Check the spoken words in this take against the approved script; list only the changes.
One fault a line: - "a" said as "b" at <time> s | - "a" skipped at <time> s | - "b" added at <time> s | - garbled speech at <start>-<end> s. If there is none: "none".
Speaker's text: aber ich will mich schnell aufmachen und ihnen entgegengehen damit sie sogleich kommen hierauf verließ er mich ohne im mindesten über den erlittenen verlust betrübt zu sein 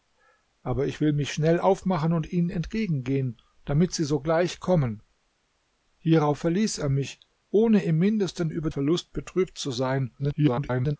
- "den erlittenen" skipped at 8.7 s
- garbled speech at 10.2-11.0 s